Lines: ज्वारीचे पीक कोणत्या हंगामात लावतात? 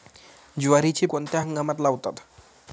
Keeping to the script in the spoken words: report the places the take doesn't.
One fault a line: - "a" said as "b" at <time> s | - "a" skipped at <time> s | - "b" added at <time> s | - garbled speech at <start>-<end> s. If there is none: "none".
- "पीक" skipped at 1.1 s